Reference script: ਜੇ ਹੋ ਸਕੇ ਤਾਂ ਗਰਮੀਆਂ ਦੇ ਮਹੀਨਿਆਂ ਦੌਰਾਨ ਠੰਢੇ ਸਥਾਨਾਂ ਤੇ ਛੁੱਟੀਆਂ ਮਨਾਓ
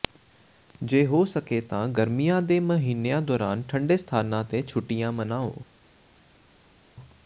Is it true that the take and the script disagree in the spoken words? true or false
false